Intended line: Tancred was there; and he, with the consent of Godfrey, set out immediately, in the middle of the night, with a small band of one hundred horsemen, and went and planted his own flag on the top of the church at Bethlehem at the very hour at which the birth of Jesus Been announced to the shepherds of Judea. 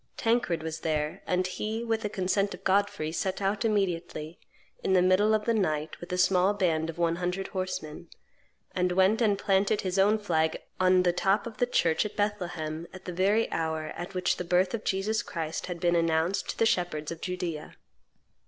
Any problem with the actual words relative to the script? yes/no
yes